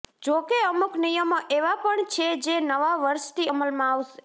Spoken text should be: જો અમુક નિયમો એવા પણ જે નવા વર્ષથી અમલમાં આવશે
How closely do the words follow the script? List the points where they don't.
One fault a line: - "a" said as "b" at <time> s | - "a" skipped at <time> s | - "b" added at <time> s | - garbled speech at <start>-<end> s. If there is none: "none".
- "કે" added at 0.4 s
- "છે" added at 2.1 s